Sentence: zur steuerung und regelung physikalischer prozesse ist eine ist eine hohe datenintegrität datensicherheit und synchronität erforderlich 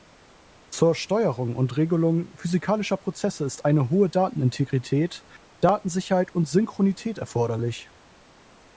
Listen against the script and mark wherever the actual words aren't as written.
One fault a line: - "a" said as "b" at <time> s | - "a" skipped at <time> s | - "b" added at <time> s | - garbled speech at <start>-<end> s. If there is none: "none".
- "ist eine" skipped at 3.9 s